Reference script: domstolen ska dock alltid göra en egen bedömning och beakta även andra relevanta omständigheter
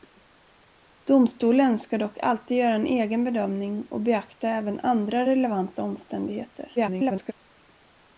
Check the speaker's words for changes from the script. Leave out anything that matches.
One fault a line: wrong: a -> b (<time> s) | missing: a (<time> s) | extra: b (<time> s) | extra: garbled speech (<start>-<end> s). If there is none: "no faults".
extra: garbled speech (6.8-7.3 s)